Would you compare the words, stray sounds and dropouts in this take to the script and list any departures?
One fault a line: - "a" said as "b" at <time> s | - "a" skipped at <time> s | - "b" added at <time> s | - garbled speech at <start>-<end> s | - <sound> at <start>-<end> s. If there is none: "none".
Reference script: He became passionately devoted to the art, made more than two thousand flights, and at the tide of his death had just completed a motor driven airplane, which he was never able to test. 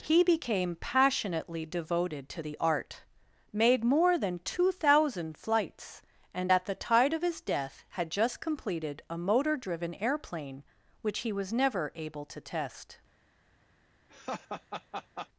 - laugh at 14.1-15.3 s